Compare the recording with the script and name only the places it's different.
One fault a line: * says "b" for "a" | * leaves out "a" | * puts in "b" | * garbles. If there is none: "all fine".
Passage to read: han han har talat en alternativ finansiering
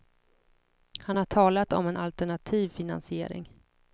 * leaves out "han"
* puts in "om"